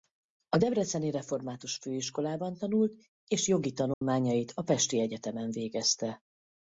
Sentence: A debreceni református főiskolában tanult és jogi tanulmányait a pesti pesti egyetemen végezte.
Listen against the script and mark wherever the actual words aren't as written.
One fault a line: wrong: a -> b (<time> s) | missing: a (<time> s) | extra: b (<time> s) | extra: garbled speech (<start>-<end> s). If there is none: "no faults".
missing: pesti (5.0 s)